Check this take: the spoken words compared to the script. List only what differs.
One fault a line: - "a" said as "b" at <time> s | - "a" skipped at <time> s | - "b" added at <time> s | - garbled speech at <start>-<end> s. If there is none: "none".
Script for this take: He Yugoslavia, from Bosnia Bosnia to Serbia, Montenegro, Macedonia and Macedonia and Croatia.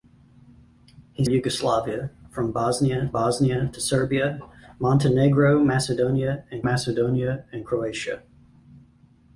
none